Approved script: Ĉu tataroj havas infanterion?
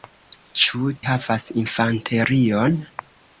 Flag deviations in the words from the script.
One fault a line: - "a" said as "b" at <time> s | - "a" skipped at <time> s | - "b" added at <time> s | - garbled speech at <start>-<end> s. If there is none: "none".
- "tataroj" skipped at 0.9 s